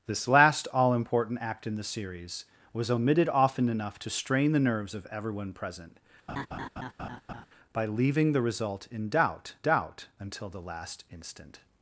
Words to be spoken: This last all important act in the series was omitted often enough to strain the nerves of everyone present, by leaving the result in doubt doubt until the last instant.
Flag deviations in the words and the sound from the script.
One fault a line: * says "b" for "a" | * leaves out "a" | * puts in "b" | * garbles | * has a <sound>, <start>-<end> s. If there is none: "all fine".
* has a laugh, 6.3-7.5 s